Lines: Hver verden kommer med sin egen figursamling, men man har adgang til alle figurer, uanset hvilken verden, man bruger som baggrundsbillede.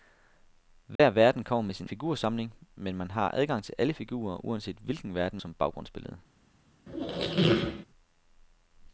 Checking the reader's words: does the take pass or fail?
fail